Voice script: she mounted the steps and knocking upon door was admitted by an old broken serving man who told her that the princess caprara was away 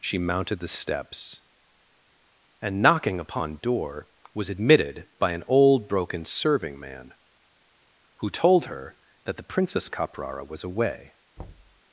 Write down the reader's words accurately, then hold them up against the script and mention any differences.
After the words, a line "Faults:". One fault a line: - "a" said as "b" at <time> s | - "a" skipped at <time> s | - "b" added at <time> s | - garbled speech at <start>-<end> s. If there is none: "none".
she mounted the steps and knocking upon door was admitted by an old broken serving man who told her that the princess caprara was away
Faults:
none